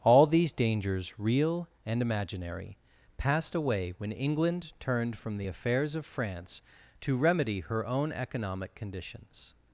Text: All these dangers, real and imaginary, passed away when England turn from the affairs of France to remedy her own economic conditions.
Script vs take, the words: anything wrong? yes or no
yes